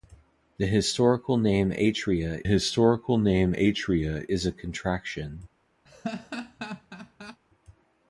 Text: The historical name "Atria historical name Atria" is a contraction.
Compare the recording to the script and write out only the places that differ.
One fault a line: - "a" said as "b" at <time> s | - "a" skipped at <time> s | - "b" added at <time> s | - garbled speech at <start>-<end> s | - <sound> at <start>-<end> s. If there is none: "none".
- laugh at 5.9-7.4 s